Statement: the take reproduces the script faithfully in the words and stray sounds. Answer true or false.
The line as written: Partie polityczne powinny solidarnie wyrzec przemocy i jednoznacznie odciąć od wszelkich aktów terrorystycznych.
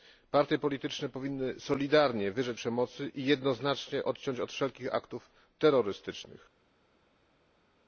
true